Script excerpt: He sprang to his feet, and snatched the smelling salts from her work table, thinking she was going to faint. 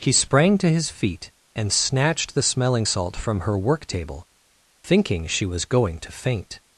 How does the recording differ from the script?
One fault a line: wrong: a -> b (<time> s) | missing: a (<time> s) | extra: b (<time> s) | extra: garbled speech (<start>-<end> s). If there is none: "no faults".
wrong: salts -> salt (2.8 s)